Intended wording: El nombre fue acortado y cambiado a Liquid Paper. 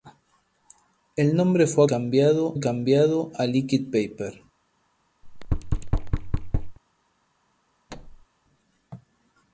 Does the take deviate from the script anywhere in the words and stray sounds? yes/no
yes